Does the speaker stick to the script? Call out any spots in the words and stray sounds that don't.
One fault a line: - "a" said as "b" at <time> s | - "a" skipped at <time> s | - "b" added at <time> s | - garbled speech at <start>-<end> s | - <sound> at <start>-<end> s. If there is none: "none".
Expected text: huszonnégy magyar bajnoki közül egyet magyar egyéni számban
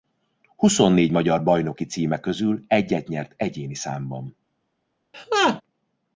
- "címe" added at 1.8 s
- "magyar" said as "nyert" at 3.1 s
- laugh at 5.1-5.6 s